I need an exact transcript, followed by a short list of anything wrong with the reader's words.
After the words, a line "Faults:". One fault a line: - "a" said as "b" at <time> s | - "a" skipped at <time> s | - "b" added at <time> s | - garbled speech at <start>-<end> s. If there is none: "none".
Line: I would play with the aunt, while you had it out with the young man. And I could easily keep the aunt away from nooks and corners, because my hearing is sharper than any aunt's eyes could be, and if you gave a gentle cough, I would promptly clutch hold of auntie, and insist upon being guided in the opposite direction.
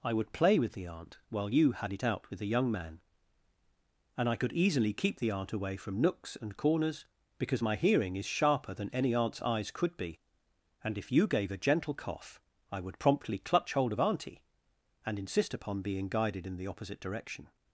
I would play with the aunt, while you had it out with the young man. And I could easily keep the aunt away from nooks and corners, because my hearing is sharper than any aunt's eyes could be, and if you gave a gentle cough, I would promptly clutch hold of auntie, and insist upon being guided in the opposite direction.
Faults:
none